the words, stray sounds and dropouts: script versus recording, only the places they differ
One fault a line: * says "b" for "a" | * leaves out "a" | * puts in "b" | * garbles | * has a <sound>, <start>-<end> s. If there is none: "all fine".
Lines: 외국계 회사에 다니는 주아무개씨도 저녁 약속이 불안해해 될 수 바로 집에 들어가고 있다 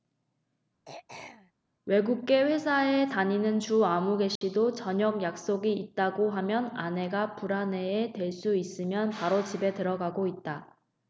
* has a throat clearing, 0.9-1.5 s
* has a dropout, 4.4-4.4 s
* puts in "있다고 하면 아내가"
* puts in "있으면"